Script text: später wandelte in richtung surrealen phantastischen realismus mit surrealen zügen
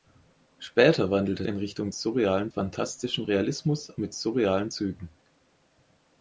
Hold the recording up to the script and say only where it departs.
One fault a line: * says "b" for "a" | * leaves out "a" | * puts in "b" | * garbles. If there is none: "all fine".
all fine